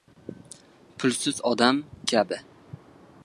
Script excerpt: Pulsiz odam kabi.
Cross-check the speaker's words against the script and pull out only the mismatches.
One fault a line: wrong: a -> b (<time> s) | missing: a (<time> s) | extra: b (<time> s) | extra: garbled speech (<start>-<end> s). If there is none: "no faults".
no faults